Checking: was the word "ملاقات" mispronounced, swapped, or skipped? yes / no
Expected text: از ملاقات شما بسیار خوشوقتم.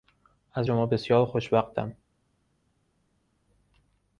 yes